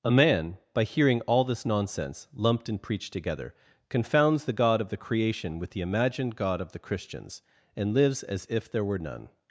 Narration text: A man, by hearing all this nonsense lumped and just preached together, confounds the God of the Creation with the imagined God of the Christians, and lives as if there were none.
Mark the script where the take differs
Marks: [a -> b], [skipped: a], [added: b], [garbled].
A man, by hearing all this nonsense lumped and [skipped: just] preached together, confounds the God of the Creation with the imagined God of the Christians, and lives as if there were none.